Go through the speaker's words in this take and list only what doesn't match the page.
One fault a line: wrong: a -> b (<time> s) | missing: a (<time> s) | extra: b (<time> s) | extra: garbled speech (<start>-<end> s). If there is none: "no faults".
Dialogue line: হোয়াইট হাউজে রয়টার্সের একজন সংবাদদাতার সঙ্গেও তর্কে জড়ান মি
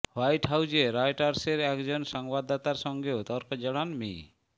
no faults